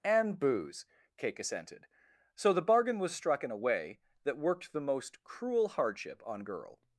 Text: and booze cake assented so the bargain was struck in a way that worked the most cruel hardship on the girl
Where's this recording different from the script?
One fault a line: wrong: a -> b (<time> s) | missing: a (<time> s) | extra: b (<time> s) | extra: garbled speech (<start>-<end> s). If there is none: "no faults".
missing: the (6.4 s)